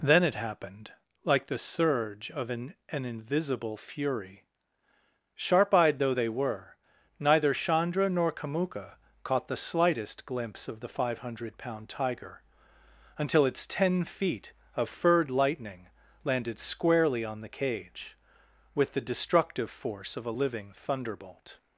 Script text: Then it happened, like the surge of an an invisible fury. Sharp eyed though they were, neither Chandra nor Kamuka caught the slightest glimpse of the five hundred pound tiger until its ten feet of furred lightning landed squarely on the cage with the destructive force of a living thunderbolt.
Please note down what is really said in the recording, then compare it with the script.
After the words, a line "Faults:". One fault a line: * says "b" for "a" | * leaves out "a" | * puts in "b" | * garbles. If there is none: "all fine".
Then it happened, like the surge of an an invisible fury. Sharp eyed though they were, neither Chandra nor Kamuka caught the slightest glimpse of the five hundred pound tiger until its ten feet of furred lightning landed squarely on the cage with the destructive force of a living thunderbolt.
Faults:
all fine